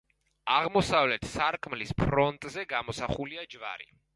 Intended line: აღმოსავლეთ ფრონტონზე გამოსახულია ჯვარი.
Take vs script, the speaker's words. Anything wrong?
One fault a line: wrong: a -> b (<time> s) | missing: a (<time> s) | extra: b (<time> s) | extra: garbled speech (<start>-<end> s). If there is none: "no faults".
extra: სარკმლის (1.3 s)